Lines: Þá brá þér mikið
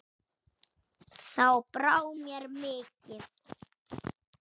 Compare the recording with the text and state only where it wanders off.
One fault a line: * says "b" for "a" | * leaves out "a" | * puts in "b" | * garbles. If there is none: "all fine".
* says "mér" for "þér"